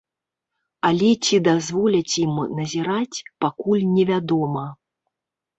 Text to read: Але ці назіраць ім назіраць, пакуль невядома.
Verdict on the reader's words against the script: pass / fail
fail